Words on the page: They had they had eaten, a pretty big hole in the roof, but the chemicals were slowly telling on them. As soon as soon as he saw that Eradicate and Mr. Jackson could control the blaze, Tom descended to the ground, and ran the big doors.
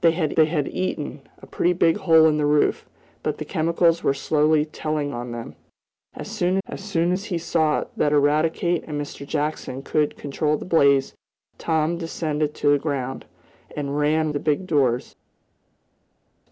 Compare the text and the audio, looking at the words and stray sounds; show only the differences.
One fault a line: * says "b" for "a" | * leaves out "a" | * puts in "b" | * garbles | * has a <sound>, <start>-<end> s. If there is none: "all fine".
all fine